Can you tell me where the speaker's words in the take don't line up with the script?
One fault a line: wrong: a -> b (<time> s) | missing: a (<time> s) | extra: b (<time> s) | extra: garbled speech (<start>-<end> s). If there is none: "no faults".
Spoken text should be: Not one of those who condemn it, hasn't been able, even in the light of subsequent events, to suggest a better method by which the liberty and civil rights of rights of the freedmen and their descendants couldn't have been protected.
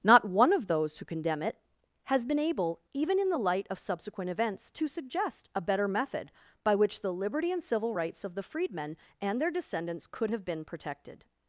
wrong: hasn't -> has (2.0 s)
missing: rights of (8.4 s)
wrong: couldn't -> could (10.1 s)